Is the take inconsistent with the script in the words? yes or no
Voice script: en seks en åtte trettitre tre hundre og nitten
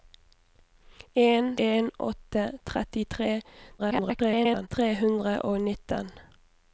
yes